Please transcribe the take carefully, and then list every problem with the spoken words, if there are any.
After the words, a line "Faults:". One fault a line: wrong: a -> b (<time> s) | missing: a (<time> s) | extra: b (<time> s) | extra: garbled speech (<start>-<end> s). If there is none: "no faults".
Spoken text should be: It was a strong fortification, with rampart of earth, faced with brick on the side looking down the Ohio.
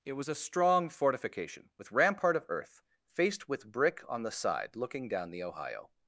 It was a strong fortification, with rampart of earth, faced with brick on the side looking down the Ohio.
Faults:
no faults